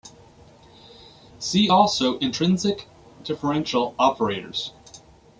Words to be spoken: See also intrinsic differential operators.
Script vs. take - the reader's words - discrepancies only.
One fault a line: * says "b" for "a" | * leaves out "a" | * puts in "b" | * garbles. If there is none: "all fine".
all fine